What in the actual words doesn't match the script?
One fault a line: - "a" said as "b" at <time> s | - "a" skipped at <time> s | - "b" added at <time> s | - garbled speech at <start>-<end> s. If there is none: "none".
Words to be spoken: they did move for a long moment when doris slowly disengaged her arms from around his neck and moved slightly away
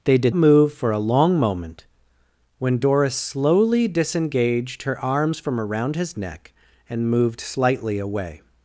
none